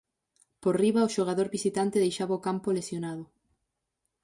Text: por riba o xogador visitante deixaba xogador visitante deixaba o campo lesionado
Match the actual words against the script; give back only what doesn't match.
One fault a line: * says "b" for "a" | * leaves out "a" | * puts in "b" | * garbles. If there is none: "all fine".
* leaves out "xogador visitante deixaba"